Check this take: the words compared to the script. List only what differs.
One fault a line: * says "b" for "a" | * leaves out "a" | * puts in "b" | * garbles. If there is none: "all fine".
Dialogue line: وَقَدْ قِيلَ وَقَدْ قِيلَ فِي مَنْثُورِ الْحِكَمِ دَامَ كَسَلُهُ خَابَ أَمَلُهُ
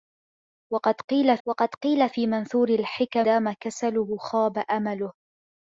all fine